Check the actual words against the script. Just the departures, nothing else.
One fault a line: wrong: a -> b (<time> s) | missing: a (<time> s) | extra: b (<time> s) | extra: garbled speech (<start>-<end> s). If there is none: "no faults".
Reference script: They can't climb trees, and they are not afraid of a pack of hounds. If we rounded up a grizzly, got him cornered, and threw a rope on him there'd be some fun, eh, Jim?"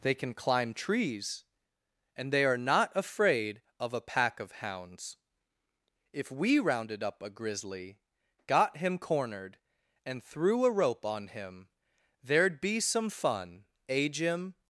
wrong: can't -> can (0.1 s)